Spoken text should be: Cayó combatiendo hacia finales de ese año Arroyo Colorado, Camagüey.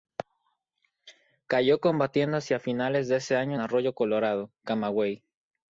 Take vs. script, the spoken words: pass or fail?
pass